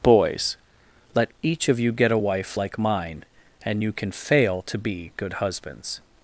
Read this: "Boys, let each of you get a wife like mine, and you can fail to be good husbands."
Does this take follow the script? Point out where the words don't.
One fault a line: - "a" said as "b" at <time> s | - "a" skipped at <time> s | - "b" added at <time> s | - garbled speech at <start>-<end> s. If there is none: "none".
none